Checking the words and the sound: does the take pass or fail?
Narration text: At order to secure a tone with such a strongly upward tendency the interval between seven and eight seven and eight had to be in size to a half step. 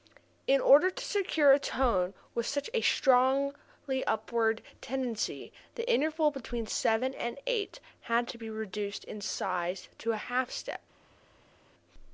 fail